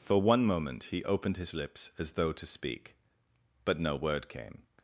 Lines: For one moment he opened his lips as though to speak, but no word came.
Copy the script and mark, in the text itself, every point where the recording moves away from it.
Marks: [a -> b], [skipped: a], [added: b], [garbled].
For one moment he opened his lips as though to speak, but no word came.